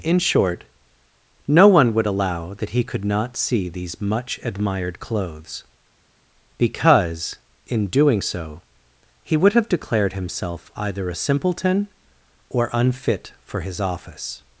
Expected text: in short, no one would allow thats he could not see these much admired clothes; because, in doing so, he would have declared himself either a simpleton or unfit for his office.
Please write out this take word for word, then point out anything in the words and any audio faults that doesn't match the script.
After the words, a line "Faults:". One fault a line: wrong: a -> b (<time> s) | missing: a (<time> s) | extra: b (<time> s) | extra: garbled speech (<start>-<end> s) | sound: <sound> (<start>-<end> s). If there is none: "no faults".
in short, no one would allow that he could not see these much admired clothes; because, in doing so, he would have declared himself either a simpleton or unfit for his office.
Faults:
wrong: thats -> that (2.5 s)